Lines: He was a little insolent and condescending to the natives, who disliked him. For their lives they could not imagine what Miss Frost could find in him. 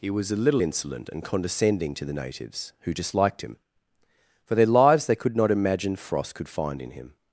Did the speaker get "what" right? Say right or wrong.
wrong